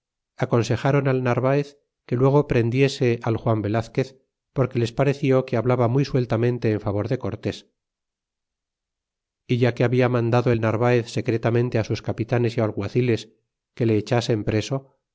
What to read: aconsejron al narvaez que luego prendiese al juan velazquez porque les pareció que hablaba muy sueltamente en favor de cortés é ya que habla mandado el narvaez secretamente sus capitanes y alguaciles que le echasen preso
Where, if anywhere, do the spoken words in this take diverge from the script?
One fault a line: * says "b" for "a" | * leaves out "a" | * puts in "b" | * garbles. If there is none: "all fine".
all fine